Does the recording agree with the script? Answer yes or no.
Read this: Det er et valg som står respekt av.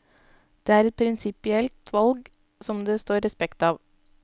no